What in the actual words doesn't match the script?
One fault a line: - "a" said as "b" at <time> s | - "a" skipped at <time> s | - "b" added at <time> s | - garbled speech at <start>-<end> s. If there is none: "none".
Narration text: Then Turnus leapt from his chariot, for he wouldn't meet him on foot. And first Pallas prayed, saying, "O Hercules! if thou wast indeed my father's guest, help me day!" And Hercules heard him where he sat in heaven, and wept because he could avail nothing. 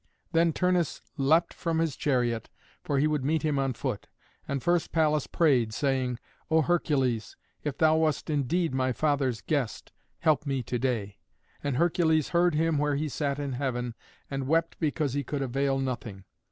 - "wouldn't" said as "would" at 3.0 s
- "to" added at 10.6 s